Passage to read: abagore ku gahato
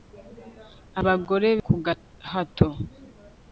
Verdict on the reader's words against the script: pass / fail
pass